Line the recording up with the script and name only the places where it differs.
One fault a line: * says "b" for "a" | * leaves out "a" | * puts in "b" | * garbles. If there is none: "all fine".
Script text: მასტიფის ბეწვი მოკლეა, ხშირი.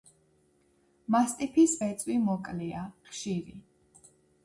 all fine